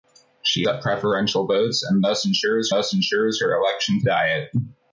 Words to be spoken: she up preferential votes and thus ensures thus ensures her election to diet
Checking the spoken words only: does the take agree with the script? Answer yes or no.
yes